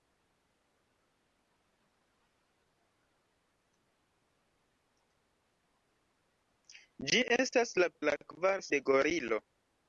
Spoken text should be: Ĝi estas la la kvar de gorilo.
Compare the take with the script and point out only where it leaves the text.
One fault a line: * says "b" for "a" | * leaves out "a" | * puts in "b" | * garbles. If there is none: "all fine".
all fine